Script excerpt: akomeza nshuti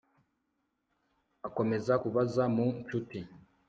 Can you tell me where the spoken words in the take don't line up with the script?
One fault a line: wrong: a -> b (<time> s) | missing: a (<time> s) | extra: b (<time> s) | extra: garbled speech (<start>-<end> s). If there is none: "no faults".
extra: kubaza mu (2.0 s)